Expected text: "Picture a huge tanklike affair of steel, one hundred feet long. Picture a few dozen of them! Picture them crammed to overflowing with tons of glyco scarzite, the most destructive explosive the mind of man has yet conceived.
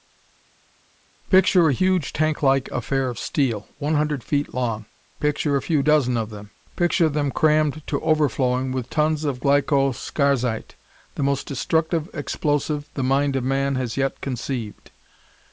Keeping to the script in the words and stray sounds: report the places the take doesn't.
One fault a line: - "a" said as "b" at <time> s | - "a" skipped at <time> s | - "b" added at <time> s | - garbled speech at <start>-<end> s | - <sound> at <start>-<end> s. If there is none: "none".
none